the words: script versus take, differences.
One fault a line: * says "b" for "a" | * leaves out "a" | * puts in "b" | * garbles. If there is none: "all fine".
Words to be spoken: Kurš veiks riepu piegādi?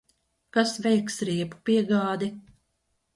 * says "Kas" for "Kurš"